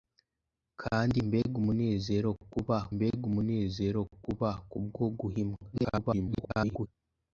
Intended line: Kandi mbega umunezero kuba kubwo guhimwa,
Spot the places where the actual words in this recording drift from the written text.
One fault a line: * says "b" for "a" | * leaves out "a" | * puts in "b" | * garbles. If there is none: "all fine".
* puts in "mbega umunezero kuba"
* garbles